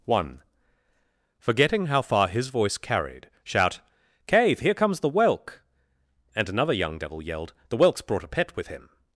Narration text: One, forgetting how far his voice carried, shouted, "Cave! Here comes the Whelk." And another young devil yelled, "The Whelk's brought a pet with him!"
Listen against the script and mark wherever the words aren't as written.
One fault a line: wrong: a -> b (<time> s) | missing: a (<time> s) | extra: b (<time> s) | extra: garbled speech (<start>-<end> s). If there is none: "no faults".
wrong: shouted -> shout (3.4 s)